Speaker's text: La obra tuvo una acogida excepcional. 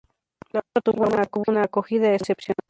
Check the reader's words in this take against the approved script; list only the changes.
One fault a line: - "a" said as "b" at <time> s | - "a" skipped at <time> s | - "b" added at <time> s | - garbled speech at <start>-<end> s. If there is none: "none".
none